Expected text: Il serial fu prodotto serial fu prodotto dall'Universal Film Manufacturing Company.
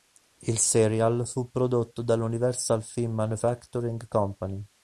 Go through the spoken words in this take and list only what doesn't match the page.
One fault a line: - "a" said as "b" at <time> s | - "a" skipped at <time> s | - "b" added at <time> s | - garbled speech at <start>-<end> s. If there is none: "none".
- "serial fu prodotto" skipped at 2.0 s